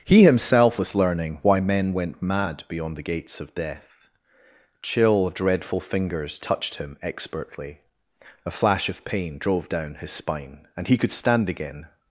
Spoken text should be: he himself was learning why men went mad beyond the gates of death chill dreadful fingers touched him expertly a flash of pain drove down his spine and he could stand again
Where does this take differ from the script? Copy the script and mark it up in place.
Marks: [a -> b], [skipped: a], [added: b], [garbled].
he himself was learning why men went mad beyond the gates of death chill dreadful fingers touched him expertly a flash of pain drove down his spine and he could stand again